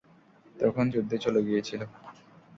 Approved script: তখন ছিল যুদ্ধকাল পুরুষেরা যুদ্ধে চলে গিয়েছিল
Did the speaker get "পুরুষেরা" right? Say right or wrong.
wrong